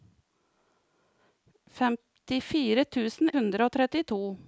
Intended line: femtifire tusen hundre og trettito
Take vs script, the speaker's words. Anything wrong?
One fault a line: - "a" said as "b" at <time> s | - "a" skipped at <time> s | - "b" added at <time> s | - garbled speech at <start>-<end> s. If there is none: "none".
none